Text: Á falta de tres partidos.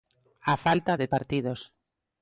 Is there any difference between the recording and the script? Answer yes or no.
yes